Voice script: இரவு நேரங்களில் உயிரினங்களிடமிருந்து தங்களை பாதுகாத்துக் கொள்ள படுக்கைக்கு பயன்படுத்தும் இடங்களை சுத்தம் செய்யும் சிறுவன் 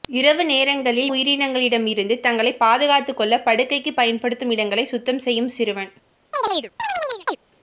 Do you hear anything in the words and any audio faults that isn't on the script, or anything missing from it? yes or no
yes